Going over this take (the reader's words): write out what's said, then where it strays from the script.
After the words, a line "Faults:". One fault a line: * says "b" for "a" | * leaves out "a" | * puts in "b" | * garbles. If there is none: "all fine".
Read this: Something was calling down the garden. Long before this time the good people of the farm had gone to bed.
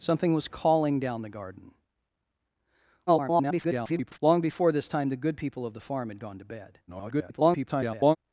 Something was calling down the garden. [garbled] Long before this time the good people of the farm had gone to bed. [garbled]
Faults:
* garbles
* garbles